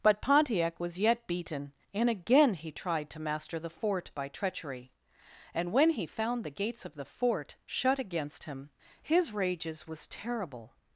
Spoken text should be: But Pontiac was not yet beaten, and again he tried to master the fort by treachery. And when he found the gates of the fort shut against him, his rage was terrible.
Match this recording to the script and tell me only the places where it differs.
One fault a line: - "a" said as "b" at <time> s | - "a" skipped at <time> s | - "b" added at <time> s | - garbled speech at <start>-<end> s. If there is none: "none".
- "not" skipped at 1.0 s
- "rage" said as "rages" at 9.3 s